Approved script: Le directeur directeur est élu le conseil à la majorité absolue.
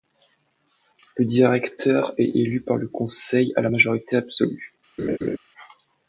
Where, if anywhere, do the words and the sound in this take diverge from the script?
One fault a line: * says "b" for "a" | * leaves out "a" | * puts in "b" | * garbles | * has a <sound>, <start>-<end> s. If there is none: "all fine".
* leaves out "directeur"
* puts in "par"
* has a laugh, 5.0-5.4 s